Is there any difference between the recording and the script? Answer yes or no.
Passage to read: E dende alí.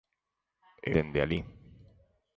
no